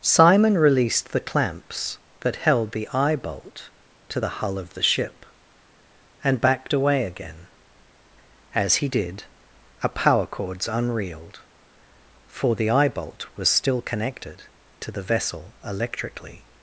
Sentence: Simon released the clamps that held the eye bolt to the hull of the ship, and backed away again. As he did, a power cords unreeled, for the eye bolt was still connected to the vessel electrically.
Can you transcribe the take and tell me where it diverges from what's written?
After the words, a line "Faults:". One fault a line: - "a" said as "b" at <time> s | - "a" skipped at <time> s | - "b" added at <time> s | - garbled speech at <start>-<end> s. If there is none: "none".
Simon released the clamps that held the eye bolt to the hull of the ship, and backed away again. As he did, a power cords unreeled, for the eye bolt was still connected to the vessel electrically.
Faults:
none